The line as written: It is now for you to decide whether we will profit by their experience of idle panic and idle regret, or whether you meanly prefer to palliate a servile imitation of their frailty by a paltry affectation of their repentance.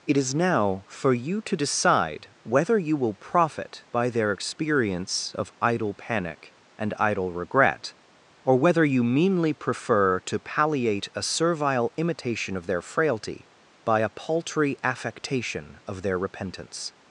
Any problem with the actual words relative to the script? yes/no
yes